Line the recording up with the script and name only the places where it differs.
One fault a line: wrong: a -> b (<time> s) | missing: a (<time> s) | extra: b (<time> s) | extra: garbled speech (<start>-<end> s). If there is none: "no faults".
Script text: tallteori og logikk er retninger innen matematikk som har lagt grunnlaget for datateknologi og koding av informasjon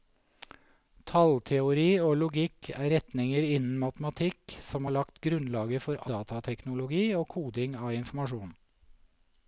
no faults